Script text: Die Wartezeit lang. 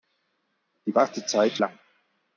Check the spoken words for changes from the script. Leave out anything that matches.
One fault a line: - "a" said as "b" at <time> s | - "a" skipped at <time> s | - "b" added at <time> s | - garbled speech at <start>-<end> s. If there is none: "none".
none